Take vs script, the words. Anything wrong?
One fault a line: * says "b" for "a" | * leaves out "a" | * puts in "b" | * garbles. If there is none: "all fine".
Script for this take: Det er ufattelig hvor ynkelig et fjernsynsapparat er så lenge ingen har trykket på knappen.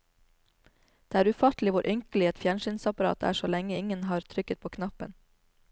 all fine